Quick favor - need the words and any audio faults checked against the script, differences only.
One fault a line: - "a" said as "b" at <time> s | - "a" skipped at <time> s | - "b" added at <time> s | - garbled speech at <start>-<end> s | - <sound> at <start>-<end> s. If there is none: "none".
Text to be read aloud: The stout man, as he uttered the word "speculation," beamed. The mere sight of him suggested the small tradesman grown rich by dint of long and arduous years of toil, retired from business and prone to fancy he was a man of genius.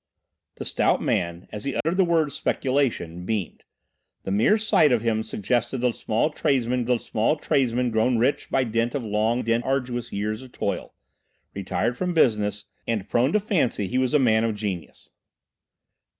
- dropout at 1.8-1.9 s
- "the small tradesman" added at 6.8 s
- "and" said as "dint" at 9.4 s